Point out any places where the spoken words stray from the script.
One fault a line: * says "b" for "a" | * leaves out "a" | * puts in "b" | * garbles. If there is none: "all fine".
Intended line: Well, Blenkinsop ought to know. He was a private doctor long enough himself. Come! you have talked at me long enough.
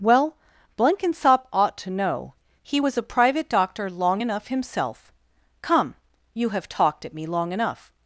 all fine